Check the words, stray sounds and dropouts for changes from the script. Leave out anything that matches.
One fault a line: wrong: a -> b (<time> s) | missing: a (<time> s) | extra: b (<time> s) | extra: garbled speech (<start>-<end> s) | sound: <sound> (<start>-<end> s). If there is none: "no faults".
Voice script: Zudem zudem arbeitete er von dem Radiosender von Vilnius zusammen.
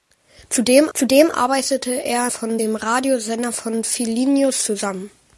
no faults